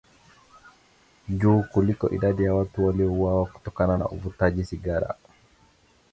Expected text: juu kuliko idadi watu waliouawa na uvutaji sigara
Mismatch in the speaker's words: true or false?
true